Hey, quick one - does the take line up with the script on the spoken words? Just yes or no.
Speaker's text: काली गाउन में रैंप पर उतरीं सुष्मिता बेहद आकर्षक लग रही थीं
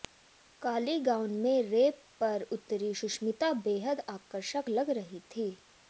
yes